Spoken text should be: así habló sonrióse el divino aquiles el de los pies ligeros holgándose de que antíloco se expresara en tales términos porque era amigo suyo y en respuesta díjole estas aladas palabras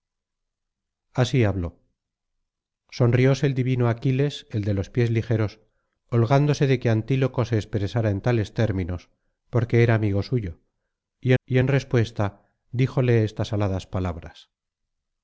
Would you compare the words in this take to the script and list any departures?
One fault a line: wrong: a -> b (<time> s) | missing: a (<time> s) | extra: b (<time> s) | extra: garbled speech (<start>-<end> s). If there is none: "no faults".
extra: y (11.4 s)